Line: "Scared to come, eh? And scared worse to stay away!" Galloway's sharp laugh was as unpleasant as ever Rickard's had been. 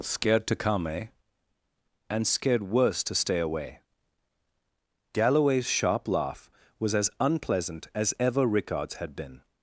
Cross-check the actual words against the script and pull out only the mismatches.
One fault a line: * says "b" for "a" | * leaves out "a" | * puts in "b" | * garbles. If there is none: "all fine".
all fine